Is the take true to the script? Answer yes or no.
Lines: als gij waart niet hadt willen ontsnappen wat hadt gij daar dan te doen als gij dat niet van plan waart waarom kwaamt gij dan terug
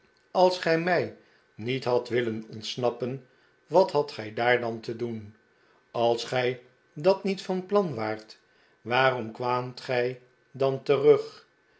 no